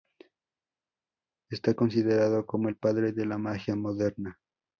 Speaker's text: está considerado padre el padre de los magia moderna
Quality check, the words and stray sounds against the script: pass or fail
fail